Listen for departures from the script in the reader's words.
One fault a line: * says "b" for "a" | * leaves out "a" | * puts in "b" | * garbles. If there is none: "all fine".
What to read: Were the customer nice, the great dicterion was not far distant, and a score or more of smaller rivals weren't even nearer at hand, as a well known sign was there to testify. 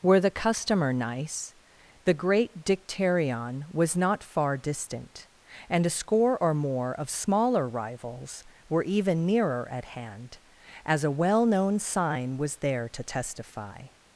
* says "were" for "weren't"